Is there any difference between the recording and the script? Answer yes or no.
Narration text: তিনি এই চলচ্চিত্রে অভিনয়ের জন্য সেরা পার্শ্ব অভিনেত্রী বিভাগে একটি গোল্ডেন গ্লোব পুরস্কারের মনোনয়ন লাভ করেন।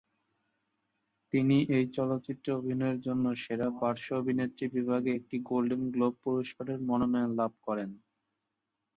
no